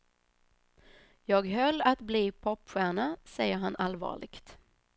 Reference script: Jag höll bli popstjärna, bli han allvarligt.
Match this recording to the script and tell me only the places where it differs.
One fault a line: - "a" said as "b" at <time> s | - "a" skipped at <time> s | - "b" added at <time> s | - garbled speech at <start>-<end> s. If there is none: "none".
- "att" added at 1.8 s
- "bli" said as "säger" at 3.2 s